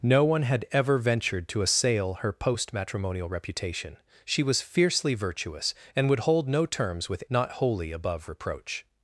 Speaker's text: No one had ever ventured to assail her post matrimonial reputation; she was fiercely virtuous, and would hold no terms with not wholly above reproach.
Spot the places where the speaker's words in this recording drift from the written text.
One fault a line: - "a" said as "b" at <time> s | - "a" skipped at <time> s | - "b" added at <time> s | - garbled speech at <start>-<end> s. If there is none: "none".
none